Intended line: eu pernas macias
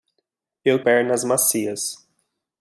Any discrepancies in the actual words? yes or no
no